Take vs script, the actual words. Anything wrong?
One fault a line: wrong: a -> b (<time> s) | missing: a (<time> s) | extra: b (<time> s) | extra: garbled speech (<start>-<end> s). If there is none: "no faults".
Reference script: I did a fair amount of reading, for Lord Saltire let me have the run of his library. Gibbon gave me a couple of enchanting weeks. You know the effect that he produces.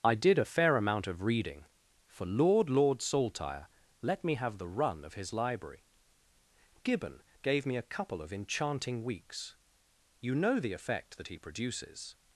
extra: Lord (2.7 s)